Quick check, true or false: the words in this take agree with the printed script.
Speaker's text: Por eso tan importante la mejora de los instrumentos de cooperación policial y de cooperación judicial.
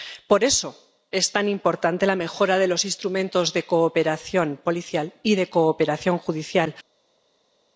false